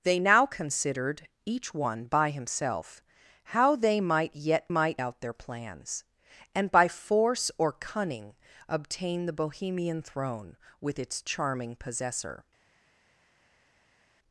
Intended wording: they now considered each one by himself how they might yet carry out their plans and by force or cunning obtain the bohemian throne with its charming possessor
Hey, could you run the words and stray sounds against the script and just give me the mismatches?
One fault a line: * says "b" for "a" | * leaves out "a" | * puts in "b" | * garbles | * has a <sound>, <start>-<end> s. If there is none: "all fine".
* says "might" for "carry"